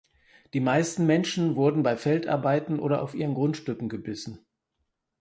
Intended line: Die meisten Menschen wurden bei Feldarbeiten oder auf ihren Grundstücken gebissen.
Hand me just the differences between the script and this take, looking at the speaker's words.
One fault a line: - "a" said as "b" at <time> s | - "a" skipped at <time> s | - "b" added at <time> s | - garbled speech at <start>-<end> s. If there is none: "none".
none